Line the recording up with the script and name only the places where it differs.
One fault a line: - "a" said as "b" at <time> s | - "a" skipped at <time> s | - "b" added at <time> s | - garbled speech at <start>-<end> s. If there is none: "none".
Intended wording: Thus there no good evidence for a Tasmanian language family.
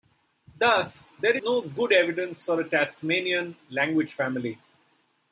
none